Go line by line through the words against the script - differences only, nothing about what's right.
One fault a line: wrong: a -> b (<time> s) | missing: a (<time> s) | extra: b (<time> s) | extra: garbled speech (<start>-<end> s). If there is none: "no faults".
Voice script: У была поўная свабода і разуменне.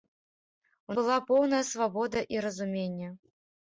no faults